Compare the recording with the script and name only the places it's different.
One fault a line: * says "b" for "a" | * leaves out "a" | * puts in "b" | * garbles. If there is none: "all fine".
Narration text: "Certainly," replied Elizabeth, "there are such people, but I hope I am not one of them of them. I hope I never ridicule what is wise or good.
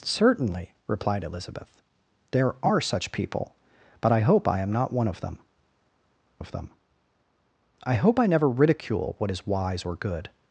all fine